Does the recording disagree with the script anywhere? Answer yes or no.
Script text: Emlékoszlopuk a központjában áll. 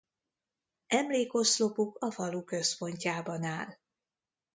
yes